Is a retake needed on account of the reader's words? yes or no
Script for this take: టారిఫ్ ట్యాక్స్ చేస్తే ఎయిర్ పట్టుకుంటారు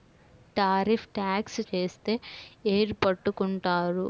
no